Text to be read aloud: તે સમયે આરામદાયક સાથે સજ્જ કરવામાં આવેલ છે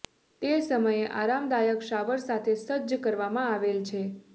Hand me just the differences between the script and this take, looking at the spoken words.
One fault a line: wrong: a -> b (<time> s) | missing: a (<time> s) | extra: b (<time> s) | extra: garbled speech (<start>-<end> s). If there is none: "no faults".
extra: શાવર (1.9 s)